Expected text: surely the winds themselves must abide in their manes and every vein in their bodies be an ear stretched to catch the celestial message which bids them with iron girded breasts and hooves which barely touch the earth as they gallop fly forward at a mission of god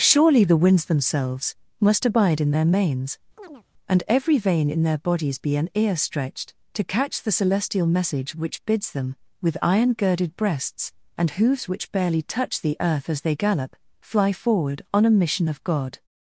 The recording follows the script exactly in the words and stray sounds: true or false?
false